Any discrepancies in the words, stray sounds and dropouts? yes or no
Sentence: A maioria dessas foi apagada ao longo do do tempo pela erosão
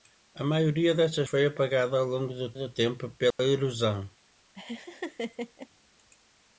yes